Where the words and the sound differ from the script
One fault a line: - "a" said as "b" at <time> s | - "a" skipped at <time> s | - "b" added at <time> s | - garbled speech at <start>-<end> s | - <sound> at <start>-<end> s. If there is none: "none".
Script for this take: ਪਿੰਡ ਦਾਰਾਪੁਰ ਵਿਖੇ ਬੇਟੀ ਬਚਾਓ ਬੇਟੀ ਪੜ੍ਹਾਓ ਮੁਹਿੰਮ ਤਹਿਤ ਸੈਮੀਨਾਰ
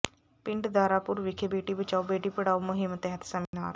- dropout at 3.5-3.5 s